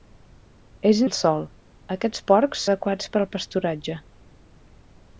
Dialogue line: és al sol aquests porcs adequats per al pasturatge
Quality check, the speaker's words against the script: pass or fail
pass